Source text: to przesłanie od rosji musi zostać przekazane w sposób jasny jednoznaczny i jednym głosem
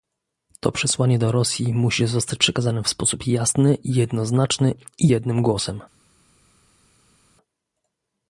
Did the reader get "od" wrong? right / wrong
wrong